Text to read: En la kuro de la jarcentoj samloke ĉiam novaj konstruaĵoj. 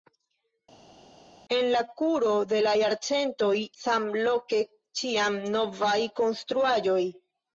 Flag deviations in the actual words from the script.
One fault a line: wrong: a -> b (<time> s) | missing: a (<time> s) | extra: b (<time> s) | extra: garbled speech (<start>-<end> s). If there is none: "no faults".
no faults